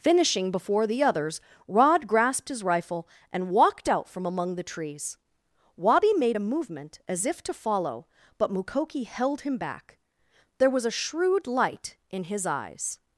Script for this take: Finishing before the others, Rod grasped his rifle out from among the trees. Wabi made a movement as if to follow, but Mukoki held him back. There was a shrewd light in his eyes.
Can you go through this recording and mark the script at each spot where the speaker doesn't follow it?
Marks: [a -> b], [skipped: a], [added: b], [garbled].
Finishing before the others, Rod grasped his rifle [added: and walked] out from among the trees. Wabi made a movement as if to follow, but Mukoki held him back. There was a shrewd light in his eyes.